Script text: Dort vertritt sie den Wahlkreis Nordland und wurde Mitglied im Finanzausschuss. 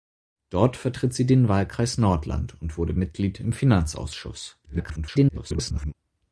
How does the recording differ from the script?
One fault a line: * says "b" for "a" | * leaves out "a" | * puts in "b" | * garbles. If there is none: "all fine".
* garbles